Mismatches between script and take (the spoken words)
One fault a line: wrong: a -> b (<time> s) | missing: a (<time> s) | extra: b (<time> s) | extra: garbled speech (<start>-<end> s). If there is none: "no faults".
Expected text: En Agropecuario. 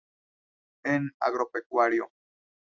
no faults